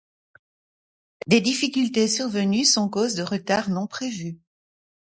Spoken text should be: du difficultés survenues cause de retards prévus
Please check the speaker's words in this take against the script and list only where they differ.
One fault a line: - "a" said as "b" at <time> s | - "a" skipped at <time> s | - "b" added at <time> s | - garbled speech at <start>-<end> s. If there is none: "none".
- "du" said as "des" at 1.3 s
- "sont" added at 2.6 s
- "non" added at 3.7 s